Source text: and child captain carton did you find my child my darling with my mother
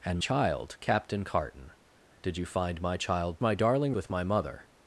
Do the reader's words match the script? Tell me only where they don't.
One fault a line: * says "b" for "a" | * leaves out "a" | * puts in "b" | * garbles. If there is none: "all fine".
all fine